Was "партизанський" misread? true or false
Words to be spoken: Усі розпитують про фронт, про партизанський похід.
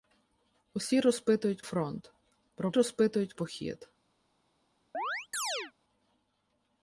true